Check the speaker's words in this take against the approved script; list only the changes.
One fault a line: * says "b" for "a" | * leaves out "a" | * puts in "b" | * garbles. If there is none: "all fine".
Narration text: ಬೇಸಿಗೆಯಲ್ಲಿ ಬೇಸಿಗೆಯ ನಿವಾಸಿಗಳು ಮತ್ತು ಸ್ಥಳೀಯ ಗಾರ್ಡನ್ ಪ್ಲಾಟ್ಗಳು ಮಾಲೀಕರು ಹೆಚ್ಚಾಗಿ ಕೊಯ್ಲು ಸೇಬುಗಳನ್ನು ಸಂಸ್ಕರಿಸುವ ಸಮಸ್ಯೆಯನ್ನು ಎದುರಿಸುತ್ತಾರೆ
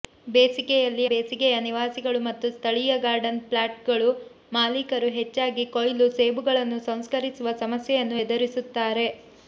all fine